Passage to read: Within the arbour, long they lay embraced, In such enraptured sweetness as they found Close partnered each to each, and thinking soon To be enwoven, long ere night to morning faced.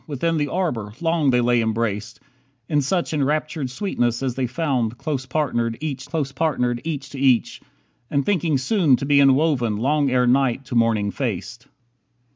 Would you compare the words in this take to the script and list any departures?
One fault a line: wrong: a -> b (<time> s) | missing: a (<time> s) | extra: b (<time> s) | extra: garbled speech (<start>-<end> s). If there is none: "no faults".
extra: Close partnered each (6.0 s)